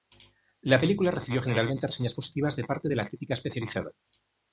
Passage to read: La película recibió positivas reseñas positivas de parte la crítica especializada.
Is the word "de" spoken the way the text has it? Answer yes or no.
yes